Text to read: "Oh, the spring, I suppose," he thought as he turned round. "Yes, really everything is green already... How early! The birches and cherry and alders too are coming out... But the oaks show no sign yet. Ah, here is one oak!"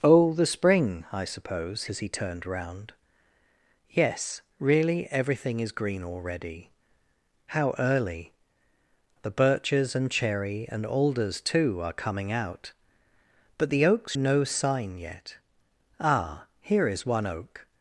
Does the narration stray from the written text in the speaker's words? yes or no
yes